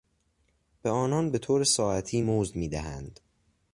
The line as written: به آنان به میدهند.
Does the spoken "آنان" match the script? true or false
true